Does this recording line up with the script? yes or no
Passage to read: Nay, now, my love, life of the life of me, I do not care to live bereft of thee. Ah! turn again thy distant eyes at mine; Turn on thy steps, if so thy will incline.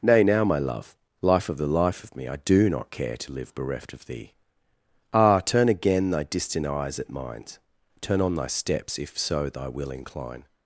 yes